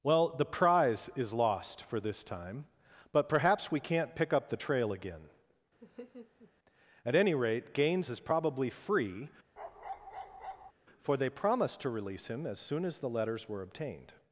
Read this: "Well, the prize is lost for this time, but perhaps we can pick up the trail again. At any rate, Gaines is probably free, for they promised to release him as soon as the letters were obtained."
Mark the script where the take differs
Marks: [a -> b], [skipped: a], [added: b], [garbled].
"Well, the prize is lost for this time, but perhaps we [can -> can't] pick up the trail again. At any rate, Gaines is probably free, for they promised to release him as soon as the letters were obtained."